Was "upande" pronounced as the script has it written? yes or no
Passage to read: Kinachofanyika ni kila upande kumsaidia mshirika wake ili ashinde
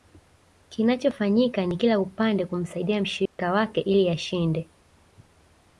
yes